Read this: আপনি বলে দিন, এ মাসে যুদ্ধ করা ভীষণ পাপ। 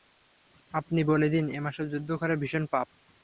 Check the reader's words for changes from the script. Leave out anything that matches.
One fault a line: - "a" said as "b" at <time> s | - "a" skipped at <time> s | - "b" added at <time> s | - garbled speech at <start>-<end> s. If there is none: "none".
none